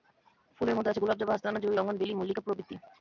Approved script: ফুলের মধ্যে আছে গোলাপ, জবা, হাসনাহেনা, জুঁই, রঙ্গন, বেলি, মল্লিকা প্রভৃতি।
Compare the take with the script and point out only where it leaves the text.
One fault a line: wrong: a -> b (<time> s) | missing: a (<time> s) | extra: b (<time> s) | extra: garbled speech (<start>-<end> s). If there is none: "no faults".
no faults